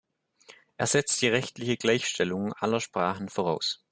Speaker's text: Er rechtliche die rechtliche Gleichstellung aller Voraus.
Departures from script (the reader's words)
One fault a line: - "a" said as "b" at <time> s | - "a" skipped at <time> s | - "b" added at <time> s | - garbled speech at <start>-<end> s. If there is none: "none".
- "rechtliche" said as "setzt" at 0.9 s
- "Sprachen" added at 2.8 s